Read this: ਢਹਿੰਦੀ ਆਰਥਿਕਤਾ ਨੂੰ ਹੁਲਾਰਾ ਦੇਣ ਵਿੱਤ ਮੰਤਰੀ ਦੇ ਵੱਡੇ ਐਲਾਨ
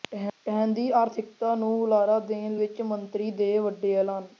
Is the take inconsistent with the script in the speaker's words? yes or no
no